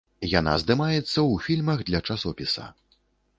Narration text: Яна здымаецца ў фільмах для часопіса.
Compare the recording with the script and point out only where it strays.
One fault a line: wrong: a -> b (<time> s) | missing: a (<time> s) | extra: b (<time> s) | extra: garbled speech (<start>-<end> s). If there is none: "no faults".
no faults